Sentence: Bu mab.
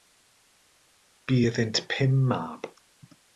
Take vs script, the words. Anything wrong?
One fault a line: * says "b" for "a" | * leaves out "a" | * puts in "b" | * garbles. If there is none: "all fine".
* puts in "iddynt pum"